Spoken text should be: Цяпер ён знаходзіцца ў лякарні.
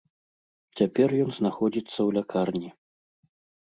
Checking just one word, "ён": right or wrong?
right